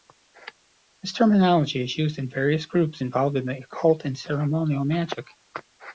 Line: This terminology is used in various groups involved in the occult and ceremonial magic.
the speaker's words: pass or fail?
pass